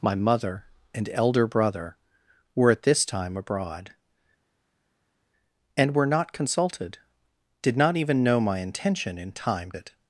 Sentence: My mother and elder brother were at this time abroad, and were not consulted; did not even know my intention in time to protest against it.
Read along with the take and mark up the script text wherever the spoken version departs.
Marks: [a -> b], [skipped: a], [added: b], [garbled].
My mother and elder brother were at this time abroad, and were not consulted; did not even know my intention in time [skipped: to protest against] it.